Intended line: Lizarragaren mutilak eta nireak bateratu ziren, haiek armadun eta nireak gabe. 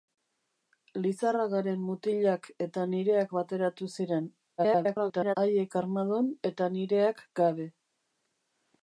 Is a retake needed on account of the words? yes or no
yes